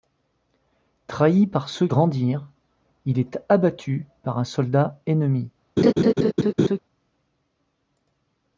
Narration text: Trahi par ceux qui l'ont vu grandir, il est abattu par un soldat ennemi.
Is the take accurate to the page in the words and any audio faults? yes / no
no